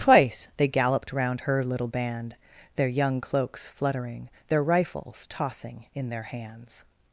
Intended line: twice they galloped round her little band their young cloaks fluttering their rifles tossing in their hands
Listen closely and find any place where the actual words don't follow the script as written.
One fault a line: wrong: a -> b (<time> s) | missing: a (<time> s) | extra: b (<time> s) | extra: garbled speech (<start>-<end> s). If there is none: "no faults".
no faults